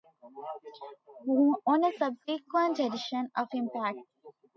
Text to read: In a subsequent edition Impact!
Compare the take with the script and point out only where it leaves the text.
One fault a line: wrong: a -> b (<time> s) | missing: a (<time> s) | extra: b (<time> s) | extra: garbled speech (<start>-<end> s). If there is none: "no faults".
wrong: In -> On (1.7 s)
extra: of (3.4 s)